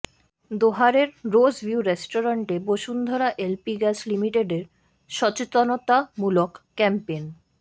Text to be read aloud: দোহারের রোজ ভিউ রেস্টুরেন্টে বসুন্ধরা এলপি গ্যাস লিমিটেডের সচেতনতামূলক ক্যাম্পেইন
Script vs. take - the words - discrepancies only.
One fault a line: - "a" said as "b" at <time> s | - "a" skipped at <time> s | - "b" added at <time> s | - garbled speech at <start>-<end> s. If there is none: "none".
none